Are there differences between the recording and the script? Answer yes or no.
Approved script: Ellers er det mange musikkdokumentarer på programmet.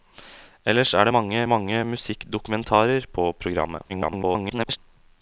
yes